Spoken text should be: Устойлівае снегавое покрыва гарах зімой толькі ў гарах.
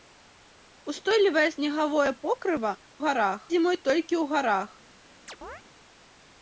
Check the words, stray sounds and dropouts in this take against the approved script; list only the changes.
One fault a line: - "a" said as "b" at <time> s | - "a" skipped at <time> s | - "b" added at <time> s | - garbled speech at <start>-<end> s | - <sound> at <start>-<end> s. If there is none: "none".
- chirp at 5.3-5.6 s